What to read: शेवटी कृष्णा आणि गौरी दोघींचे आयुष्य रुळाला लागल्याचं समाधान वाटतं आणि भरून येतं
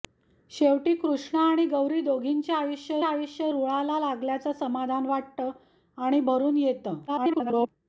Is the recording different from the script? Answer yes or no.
yes